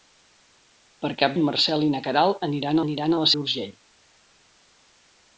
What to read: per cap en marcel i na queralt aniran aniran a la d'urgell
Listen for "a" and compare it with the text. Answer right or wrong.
right